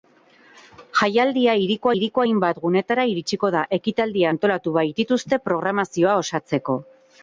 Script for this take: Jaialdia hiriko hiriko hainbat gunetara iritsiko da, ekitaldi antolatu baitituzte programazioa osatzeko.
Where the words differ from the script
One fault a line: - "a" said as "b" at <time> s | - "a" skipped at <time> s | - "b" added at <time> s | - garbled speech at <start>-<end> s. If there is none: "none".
none